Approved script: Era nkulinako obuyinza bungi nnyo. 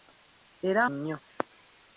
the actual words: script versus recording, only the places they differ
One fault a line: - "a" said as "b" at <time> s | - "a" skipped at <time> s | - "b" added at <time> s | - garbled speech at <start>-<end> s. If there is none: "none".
- "nkulinako obuyinza bungi" skipped at 0.8 s